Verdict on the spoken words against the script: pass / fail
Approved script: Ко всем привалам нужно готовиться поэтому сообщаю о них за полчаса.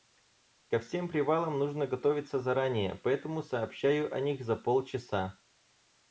fail